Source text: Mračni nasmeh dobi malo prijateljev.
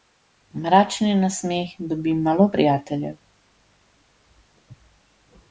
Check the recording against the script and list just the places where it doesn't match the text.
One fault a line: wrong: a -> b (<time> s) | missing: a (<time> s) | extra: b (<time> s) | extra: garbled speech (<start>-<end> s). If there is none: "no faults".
no faults